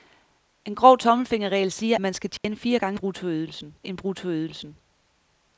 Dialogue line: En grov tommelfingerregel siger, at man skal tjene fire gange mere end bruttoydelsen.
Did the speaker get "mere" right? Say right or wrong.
wrong